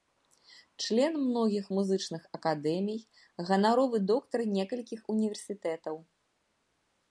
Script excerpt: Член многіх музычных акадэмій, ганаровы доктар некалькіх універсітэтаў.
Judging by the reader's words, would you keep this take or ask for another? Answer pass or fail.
pass